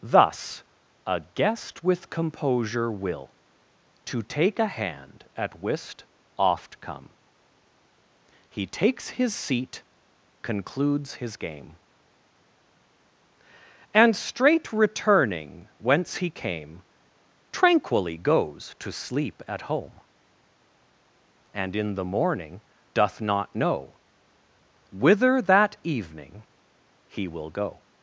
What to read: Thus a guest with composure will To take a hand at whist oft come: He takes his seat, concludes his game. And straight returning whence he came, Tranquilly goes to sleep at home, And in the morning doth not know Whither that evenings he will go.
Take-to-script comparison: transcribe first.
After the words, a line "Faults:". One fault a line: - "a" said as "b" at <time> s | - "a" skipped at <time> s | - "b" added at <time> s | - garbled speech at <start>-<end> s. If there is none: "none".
Thus a guest with composure will To take a hand at whist oft come: He takes his seat, concludes his game. And straight returning whence he came, Tranquilly goes to sleep at home, And in the morning doth not know Whither that evening he will go.
Faults:
- "evenings" said as "evening" at 25.8 s